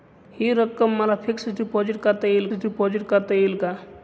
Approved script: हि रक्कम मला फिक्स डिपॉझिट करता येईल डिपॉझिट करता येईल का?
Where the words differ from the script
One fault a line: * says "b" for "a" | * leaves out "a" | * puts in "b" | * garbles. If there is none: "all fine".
all fine